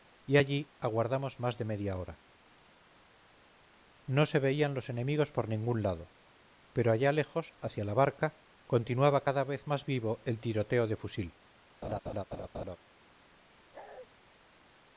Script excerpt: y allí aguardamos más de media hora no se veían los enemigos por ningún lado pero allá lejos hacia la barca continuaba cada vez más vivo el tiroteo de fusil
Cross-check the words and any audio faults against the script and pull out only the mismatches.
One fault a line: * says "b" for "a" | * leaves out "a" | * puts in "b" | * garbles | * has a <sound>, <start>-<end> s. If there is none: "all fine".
* has a laugh, 11.8-12.8 s
* has a bark, 13.7-14.1 s